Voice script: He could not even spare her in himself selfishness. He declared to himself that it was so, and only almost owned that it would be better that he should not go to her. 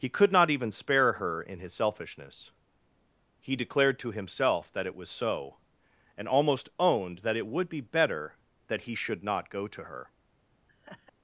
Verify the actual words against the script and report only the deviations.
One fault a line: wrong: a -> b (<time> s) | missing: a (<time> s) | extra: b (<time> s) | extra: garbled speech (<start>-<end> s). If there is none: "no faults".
wrong: himself -> his (1.6 s)
missing: only (6.3 s)